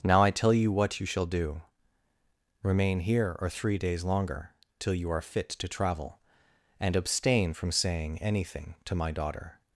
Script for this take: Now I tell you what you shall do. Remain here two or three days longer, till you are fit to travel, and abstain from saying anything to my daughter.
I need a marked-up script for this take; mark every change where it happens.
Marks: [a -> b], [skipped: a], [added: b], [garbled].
Now I tell you what you shall do. Remain here [skipped: two] or three days longer, till you are fit to travel, and abstain from saying anything to my daughter.